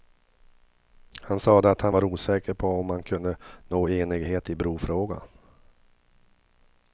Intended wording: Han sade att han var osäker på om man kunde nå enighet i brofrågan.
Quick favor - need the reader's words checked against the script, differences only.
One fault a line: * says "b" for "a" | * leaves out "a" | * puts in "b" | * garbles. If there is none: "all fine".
all fine